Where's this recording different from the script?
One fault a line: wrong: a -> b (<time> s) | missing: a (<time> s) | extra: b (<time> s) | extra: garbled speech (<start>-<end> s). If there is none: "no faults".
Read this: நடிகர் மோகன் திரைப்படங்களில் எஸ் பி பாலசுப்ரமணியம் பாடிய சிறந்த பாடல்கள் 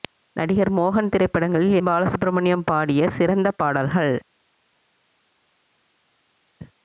missing: எஸ் பி (1.8 s)